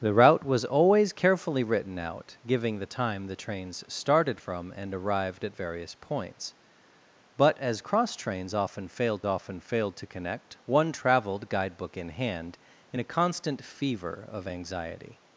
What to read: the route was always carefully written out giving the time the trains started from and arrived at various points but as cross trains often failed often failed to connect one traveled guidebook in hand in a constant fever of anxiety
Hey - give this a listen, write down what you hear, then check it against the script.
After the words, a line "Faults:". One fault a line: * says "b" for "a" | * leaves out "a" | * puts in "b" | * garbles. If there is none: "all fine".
the route was always carefully written out giving the time the trains started from and arrived at various points but as cross trains often failed often failed to connect one traveled guidebook in hand in a constant fever of anxiety
Faults:
all fine